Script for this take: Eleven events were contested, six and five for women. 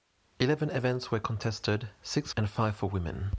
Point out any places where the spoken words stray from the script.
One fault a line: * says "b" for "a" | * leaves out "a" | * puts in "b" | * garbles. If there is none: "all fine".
all fine